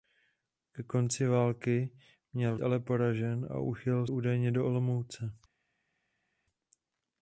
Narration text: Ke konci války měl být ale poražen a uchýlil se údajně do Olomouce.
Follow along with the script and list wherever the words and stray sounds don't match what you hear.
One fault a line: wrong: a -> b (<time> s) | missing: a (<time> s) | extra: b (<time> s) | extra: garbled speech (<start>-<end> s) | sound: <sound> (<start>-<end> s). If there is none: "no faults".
missing: být (2.6 s)
missing: se (4.1 s)